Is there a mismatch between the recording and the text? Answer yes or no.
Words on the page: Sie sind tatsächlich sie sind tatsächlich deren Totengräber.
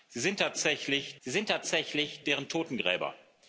no